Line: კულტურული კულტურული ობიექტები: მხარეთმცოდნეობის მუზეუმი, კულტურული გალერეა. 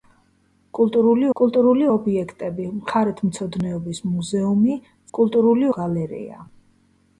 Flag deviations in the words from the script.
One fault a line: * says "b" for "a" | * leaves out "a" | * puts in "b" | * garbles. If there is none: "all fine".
all fine